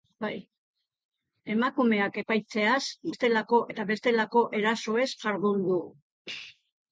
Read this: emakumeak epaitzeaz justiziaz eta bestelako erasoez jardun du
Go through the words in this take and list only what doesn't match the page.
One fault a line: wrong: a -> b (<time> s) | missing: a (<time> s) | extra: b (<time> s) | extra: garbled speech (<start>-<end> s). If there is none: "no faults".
wrong: justiziaz -> bestelako (3.1 s)